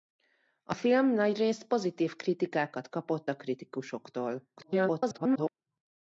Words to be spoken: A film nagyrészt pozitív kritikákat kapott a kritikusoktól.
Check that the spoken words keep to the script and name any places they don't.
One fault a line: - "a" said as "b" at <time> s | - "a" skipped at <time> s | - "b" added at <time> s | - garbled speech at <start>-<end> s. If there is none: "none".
- garbled speech at 4.6-5.5 s